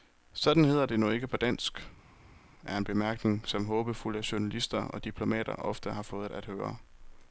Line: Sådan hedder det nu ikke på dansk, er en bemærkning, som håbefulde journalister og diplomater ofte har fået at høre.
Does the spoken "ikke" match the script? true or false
true